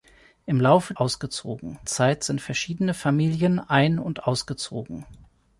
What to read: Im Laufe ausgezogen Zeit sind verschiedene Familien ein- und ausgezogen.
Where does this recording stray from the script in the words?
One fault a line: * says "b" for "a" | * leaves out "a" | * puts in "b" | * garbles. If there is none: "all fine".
all fine